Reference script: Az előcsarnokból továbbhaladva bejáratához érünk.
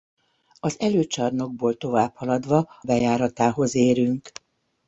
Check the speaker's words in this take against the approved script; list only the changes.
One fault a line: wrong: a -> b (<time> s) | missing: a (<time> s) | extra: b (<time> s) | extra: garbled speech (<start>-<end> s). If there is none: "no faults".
no faults